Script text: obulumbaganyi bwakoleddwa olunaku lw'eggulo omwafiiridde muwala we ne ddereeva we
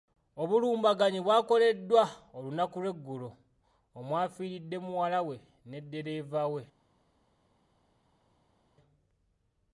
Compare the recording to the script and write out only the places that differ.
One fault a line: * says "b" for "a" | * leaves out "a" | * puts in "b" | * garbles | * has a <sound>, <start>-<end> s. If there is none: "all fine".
all fine